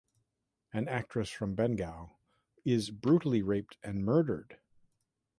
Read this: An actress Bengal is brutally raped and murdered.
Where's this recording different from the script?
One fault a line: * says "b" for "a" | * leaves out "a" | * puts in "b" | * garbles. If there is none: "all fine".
* puts in "from"